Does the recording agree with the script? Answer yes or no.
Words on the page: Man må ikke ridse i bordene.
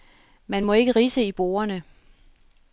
yes